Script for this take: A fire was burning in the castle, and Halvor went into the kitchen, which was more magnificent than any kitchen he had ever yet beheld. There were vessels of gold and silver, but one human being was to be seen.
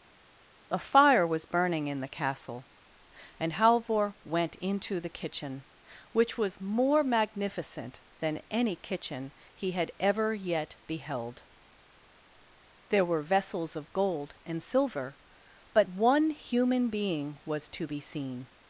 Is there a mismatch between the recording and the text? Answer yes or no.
no